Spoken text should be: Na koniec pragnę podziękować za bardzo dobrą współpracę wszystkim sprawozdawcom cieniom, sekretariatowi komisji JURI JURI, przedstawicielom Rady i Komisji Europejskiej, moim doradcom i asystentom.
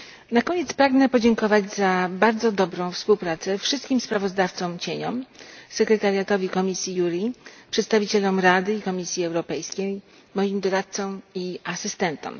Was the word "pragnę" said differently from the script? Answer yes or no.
no